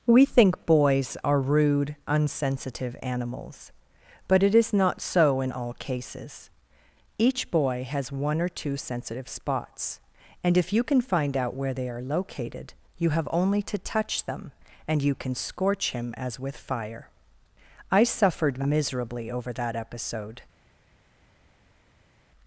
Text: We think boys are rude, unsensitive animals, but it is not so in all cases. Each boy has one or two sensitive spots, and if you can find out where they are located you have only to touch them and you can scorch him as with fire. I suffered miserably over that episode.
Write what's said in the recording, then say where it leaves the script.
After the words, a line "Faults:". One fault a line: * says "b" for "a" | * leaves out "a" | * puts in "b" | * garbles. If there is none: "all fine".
We think boys are rude, unsensitive animals, but it is not so in all cases. Each boy has one or two sensitive spots, and if you can find out where they are located you have only to touch them and you can scorch him as with fire. I suffered miserably over that episode.
Faults:
all fine